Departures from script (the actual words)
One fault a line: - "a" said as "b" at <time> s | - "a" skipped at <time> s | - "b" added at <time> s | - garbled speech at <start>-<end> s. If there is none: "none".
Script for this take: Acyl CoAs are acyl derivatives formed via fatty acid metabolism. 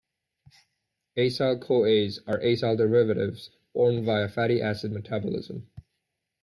none